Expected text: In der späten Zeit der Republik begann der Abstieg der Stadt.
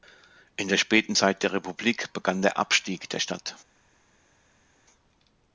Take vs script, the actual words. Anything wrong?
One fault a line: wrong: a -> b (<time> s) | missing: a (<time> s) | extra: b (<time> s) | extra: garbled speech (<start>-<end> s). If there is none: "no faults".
no faults